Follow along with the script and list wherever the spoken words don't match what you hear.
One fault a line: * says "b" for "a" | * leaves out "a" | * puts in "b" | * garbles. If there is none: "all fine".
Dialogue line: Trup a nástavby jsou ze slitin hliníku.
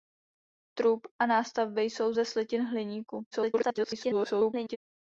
* garbles